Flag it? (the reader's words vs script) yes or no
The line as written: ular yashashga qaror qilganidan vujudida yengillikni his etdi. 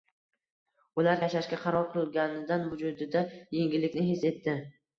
no